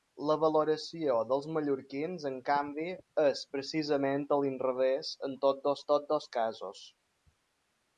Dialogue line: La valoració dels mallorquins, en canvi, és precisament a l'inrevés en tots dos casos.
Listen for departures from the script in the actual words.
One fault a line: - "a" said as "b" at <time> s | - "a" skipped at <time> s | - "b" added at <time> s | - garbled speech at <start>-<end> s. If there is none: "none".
- "tots dos" added at 5.9 s